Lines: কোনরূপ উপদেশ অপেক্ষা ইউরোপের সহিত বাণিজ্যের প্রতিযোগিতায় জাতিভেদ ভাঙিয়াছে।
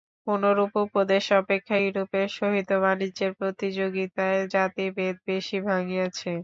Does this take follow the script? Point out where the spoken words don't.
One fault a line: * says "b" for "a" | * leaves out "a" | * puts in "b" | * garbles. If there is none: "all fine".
* puts in "বেশী"